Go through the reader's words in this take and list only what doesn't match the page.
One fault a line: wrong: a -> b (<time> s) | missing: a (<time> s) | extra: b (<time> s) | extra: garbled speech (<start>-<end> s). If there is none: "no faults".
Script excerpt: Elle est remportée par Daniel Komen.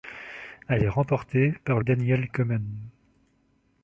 no faults